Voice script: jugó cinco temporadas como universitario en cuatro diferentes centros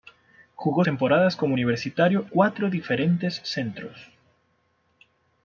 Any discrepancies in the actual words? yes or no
yes